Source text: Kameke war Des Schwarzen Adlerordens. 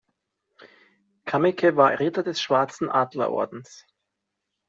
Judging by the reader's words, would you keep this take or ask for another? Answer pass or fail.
fail